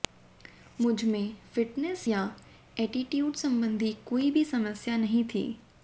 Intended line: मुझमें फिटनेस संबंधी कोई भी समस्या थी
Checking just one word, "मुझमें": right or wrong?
right